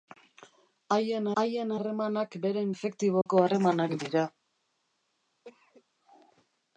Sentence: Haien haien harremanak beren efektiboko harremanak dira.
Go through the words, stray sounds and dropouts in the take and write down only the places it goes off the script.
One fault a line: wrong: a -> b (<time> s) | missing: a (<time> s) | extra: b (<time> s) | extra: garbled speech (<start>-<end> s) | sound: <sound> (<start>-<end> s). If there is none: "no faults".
sound: dropout (3.2-3.3 s)
sound: cough (5.4-5.8 s)